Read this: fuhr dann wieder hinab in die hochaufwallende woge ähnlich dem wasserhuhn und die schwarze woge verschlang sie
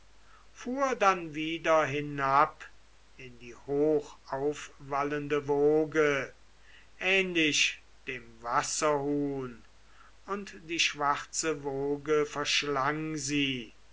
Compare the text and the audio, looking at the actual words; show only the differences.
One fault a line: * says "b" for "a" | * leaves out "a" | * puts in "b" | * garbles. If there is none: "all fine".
all fine